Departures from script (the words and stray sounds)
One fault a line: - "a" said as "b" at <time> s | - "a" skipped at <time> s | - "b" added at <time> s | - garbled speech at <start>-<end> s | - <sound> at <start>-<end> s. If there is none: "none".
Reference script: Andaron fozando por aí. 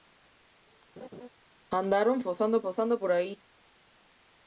- laugh at 1.0-1.3 s
- "fozando" added at 2.6 s